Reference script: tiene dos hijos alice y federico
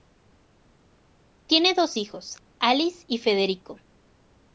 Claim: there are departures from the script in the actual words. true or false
false